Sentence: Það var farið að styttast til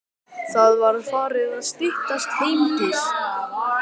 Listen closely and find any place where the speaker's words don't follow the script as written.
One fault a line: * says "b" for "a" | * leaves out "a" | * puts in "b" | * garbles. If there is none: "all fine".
* puts in "heim"